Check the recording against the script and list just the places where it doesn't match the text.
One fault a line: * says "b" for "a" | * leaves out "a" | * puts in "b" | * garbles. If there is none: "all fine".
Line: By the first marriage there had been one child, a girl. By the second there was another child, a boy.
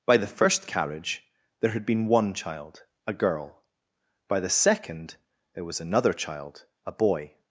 * says "carriage" for "marriage"